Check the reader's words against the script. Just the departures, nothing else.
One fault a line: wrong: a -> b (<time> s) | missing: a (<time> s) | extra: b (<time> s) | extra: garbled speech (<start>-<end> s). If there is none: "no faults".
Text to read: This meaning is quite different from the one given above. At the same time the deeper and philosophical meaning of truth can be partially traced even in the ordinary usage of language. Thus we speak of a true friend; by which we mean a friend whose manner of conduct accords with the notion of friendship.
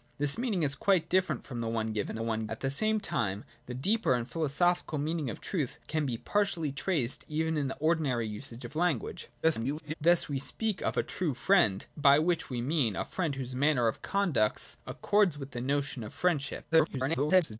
wrong: above -> one (2.2 s)
extra: garbled speech (9.4-9.9 s)
extra: garbled speech (16.7-17.6 s)